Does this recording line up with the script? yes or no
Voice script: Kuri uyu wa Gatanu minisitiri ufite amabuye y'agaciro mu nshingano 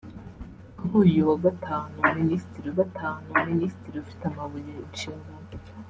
no